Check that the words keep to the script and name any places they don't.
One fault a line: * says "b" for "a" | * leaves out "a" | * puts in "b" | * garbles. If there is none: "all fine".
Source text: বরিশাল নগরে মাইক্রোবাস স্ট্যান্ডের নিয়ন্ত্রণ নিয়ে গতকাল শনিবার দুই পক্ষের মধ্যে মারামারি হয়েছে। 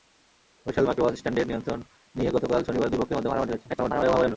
* leaves out "নগরে"
* garbles